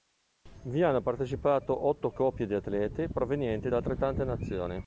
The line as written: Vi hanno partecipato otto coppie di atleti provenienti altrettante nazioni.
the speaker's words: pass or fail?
fail